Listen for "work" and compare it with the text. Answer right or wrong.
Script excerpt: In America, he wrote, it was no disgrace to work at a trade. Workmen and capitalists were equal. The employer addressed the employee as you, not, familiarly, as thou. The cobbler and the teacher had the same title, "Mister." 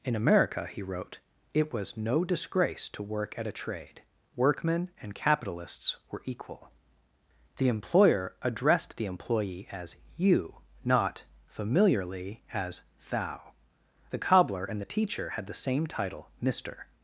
right